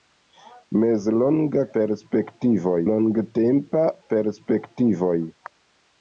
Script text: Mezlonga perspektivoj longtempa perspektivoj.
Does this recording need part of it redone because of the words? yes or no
no